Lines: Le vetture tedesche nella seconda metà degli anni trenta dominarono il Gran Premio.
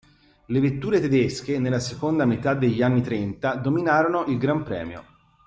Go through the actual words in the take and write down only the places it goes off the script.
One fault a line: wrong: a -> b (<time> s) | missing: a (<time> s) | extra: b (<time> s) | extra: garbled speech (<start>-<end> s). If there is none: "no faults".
no faults